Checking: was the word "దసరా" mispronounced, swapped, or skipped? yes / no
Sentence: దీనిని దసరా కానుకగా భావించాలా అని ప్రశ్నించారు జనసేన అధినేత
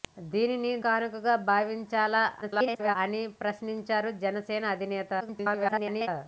yes